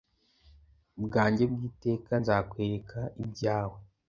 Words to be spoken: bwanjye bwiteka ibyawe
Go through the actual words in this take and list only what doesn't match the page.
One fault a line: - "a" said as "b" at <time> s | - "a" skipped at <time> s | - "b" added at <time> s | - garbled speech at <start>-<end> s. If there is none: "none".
- "nzakwereka" added at 2.2 s